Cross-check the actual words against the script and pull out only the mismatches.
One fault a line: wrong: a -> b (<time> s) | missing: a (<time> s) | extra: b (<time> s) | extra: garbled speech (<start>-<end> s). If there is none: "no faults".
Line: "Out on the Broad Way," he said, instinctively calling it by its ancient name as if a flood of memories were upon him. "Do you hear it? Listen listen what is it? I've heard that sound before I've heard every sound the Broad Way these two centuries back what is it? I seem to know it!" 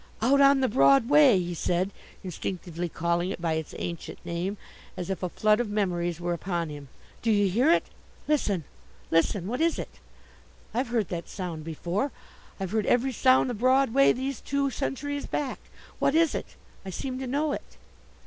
no faults